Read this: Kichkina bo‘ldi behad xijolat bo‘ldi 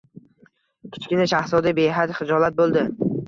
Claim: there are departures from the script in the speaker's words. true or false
true